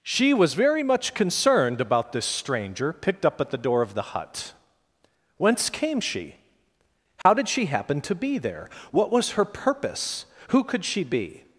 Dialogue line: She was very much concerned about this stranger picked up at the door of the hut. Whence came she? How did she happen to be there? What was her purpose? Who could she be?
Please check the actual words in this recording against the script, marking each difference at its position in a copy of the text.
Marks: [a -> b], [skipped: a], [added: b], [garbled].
She was very much concerned about this stranger picked up at the door of the hut. Whence came she? How did she happen to be there? What was her purpose? Who could she be?